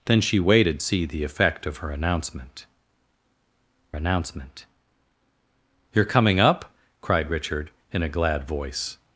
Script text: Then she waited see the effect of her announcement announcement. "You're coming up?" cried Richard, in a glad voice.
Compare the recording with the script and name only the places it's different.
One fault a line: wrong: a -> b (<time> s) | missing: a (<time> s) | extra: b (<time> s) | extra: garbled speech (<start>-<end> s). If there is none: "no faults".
no faults